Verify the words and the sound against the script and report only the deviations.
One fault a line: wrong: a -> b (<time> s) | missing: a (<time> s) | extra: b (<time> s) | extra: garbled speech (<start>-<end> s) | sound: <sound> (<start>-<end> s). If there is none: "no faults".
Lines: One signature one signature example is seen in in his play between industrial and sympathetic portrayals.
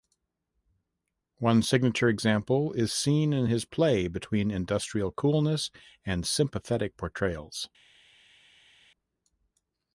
missing: one signature (2.1 s)
missing: in (3.5 s)
extra: coolness (5.1 s)